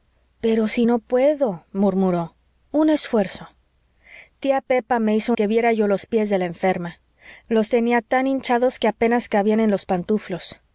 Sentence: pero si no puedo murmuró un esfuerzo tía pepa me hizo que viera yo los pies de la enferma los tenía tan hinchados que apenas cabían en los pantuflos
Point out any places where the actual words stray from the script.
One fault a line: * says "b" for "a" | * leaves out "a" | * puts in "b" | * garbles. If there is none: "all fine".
all fine